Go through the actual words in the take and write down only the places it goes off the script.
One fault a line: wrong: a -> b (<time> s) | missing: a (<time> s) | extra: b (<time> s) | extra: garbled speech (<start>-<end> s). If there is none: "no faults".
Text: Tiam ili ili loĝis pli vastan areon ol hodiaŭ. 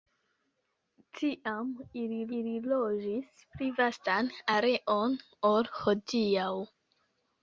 no faults